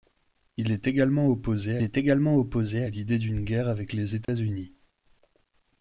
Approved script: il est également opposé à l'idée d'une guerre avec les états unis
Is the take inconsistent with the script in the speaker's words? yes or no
yes